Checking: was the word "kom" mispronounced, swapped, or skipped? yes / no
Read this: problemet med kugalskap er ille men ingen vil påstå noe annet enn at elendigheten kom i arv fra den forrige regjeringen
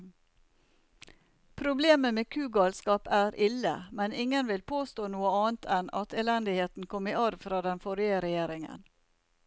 no